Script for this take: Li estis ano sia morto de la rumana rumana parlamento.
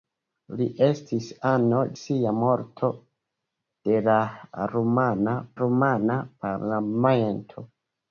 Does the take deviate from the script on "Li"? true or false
false